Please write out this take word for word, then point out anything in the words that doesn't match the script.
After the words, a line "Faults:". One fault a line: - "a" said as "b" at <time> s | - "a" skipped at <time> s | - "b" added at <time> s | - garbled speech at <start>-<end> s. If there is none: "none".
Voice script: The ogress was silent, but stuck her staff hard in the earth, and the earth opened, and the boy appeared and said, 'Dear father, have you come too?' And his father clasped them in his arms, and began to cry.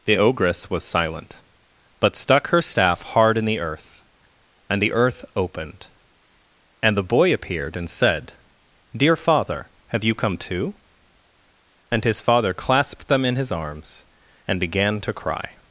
The ogress was silent, but stuck her staff hard in the earth, and the earth opened, and the boy appeared and said, 'Dear father, have you come too?' And his father clasped them in his arms, and began to cry.
Faults:
none